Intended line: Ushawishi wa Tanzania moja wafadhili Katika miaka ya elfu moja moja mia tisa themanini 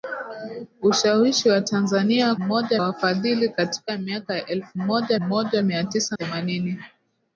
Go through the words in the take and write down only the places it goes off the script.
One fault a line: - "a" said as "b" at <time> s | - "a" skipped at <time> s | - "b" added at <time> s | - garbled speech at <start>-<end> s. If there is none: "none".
none